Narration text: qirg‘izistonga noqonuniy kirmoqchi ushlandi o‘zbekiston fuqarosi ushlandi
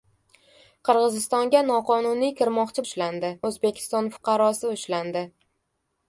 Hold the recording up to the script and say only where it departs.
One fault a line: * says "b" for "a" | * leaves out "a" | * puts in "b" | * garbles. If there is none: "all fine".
all fine